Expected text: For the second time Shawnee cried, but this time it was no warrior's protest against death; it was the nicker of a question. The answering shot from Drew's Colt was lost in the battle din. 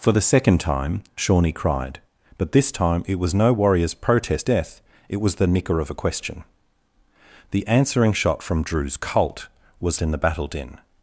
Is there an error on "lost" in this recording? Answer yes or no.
yes